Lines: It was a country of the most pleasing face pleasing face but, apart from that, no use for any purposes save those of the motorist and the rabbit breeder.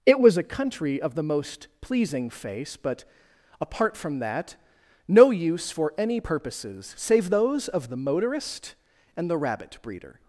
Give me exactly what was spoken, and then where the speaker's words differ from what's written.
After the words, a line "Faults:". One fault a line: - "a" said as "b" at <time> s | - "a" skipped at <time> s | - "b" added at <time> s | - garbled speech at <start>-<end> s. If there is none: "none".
It was a country of the most pleasing face but, apart from that, no use for any purposes save those of the motorist and the rabbit breeder.
Faults:
- "pleasing face" skipped at 2.8 s